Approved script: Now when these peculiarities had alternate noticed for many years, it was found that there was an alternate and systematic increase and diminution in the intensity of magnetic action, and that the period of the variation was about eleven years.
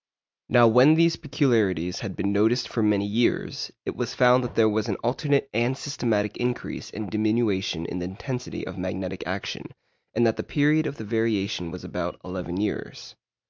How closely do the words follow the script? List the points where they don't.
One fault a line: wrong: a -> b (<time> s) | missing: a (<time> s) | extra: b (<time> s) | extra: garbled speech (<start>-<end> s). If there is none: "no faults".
wrong: alternate -> been (2.1 s)